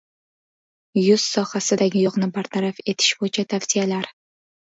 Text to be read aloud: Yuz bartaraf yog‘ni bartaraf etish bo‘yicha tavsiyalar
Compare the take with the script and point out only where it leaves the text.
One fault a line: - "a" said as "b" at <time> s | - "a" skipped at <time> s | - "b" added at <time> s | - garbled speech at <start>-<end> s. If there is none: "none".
- "bartaraf" said as "sohasidagi" at 1.3 s